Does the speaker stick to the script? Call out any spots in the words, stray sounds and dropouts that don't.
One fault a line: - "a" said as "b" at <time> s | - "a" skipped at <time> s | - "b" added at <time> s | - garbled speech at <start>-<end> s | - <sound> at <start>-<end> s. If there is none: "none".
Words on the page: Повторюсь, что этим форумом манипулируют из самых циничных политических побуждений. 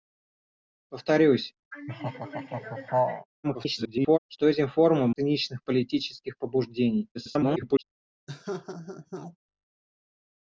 - laugh at 1.7-3.3 s
- garbled speech at 3.4-4.2 s
- "манипулируют из самых" skipped at 5.1 s
- garbled speech at 7.1-7.8 s
- laugh at 8.3-9.4 s